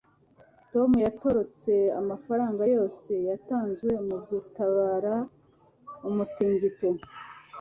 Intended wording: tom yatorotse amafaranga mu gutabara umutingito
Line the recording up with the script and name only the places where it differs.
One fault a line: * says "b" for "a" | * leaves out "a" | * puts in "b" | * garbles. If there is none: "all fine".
* puts in "yose yatanzwe"